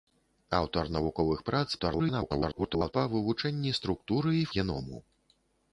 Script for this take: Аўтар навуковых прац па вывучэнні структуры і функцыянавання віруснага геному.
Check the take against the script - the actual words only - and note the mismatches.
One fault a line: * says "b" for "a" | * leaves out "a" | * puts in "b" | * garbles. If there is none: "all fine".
* garbles
* leaves out "функцыянавання віруснага"